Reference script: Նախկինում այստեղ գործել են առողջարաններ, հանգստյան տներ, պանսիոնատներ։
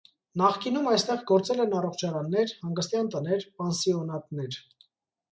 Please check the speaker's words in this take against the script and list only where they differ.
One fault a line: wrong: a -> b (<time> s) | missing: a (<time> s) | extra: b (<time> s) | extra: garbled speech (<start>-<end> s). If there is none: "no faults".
no faults